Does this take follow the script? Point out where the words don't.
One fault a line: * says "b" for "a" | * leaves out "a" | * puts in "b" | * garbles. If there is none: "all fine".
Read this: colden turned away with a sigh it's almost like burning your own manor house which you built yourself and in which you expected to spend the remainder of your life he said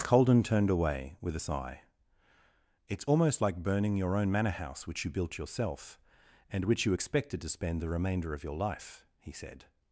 * leaves out "in"